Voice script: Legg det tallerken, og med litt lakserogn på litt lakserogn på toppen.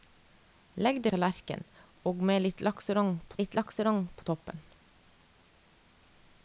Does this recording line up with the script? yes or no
yes